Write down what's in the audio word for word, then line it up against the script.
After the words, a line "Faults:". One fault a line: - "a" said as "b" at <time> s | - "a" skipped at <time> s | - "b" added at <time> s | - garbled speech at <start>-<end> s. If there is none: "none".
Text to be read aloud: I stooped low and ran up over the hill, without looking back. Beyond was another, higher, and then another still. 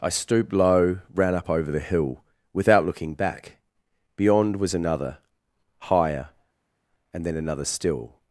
I stooped low ran up over the hill, without looking back. Beyond was another, higher, and then another still.
Faults:
- "and" skipped at 1.0 s